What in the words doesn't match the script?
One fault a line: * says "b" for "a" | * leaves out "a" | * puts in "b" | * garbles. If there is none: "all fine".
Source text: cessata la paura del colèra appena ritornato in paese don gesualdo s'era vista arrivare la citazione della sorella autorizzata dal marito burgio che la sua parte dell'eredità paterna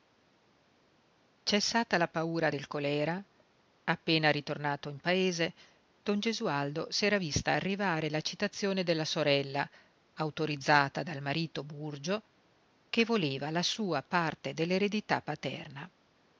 * puts in "voleva"